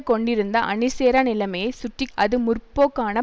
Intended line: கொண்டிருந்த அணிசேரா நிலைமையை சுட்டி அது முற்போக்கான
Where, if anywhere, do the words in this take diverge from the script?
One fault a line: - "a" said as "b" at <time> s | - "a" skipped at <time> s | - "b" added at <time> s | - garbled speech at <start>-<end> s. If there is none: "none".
none